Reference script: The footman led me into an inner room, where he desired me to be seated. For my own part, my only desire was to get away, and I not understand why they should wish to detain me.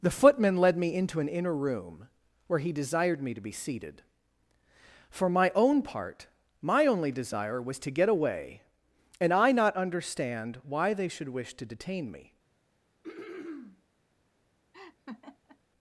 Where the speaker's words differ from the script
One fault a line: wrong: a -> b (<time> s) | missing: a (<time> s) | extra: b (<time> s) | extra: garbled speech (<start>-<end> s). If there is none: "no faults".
no faults